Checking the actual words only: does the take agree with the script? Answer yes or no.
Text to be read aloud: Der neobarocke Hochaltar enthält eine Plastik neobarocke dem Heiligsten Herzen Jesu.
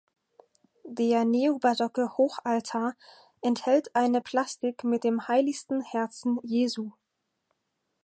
no